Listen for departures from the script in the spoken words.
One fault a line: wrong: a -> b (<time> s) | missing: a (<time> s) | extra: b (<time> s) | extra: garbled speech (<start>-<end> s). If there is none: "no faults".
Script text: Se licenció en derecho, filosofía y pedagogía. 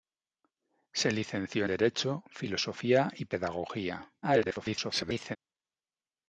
missing: en (1.6 s)
extra: garbled speech (4.2-5.4 s)